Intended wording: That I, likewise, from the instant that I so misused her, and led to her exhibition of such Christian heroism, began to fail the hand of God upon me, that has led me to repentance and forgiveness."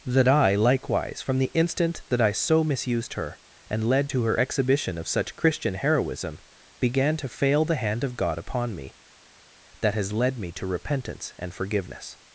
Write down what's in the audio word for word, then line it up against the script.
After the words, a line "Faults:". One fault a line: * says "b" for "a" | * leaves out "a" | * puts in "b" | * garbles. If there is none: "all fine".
That I, likewise, from the instant that I so misused her, and led to her exhibition of such Christian heroism, began to fail the hand of God upon me, that has led me to repentance and forgiveness."
Faults:
all fine